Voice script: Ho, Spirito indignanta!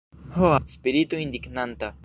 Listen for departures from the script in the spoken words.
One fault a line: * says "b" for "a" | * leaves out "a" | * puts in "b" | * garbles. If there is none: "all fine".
all fine